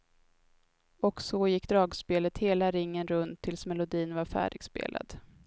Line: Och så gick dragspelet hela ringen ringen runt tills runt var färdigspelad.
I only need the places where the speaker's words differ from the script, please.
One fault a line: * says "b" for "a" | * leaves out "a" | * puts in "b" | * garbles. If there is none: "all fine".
* leaves out "ringen"
* says "melodin" for "runt"